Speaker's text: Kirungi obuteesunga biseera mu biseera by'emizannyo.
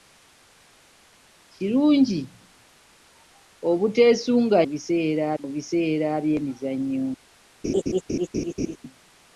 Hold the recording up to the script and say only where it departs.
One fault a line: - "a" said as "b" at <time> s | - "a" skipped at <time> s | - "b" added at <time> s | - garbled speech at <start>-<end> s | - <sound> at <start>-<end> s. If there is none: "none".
- laugh at 7.6-8.8 s